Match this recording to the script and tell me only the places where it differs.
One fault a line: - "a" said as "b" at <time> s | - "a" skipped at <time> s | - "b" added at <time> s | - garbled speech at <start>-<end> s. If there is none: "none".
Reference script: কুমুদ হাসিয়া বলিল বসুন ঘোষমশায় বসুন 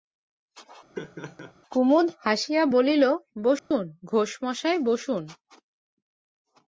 none